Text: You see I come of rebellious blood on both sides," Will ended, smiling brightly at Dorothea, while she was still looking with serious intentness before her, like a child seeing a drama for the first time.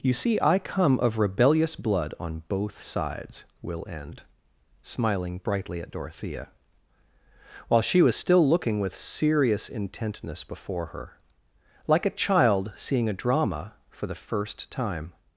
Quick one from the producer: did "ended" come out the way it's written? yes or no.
no